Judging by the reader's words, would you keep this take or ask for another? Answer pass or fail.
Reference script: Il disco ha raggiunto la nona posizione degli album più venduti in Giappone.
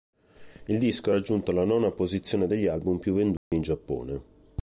pass